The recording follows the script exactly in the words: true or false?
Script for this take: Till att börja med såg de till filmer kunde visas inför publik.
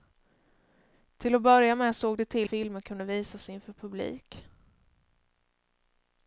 true